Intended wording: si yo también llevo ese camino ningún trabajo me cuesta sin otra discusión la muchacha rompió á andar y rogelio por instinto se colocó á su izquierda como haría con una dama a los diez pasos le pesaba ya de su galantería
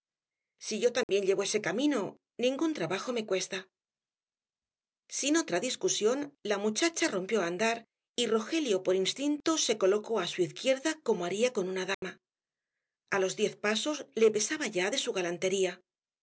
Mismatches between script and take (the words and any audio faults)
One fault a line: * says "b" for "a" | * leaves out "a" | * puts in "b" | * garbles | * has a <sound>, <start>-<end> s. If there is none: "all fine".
* has a dropout, 1.0-1.1 s
* has a dropout, 11.9-12.0 s